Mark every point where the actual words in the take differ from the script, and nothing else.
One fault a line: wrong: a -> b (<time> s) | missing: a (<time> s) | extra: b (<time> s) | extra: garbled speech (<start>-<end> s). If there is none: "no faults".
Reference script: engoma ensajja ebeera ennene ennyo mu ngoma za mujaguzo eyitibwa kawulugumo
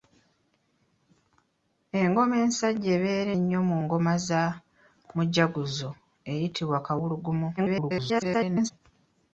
missing: ennene (3.3 s)
extra: garbled speech (7.6-8.7 s)